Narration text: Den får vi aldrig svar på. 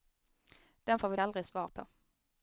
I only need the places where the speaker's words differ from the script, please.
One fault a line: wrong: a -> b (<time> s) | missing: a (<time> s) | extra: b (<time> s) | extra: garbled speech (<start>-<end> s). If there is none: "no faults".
no faults